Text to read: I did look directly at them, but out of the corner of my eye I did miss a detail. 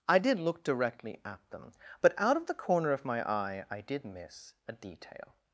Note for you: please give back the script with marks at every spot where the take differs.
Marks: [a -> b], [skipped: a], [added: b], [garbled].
I did look directly at them, but out of the corner of my eye I did miss a detail.